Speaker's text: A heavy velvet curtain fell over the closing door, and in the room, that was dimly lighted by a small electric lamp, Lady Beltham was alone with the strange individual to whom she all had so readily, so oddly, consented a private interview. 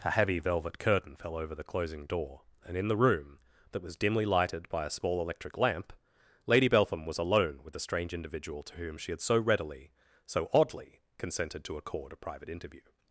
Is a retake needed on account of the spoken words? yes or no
yes